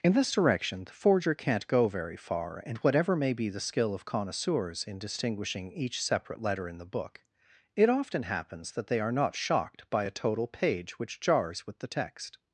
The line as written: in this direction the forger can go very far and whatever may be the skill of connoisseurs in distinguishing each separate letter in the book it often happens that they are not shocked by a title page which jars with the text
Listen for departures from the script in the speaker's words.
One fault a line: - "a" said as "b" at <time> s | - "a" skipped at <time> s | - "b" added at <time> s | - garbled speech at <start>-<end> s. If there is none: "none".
- "can" said as "can't" at 1.4 s
- "title" said as "total" at 10.1 s